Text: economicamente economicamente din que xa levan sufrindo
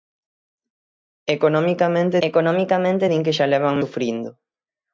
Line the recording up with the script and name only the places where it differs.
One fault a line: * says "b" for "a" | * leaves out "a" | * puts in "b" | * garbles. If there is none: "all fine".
all fine